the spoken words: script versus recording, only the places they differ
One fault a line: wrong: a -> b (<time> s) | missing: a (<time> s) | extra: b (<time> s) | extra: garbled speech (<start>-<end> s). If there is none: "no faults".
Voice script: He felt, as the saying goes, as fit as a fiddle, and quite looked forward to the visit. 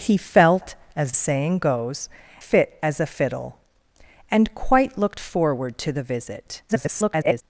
missing: the (1.1 s)
missing: as (2.1 s)
extra: garbled speech (6.7-7.4 s)